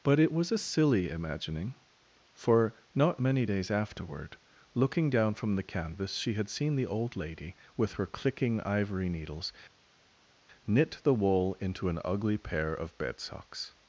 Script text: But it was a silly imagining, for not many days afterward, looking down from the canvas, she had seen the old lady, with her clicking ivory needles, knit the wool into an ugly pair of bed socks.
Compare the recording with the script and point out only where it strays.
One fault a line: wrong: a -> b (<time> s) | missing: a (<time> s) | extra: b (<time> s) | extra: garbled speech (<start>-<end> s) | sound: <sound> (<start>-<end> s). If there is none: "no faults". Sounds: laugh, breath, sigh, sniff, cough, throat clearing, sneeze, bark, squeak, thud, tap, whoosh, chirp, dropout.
no faults